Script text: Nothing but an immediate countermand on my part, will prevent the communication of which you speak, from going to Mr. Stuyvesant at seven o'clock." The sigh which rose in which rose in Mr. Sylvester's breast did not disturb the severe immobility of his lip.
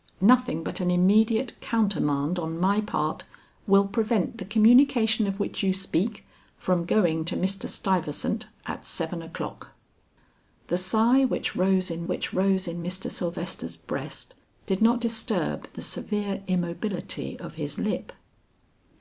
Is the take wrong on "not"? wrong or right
right